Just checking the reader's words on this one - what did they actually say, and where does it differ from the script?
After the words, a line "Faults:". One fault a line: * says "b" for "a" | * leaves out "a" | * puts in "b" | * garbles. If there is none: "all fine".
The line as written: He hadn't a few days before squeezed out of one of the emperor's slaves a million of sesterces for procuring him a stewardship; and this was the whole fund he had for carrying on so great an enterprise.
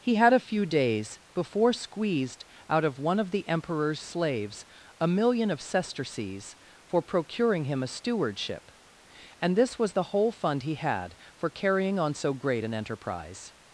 He had a few days before squeezed out of one of the emperor's slaves a million of sesterces for procuring him a stewardship; and this was the whole fund he had for carrying on so great an enterprise.
Faults:
* says "had" for "hadn't"